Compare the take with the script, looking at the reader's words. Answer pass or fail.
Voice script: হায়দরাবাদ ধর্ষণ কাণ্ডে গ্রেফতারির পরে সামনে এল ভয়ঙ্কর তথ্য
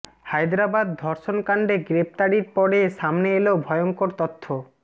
pass